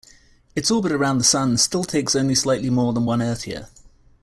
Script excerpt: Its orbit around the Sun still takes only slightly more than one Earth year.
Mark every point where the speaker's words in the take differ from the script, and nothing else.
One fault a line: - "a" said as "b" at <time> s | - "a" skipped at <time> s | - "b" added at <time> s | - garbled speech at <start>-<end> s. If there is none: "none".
none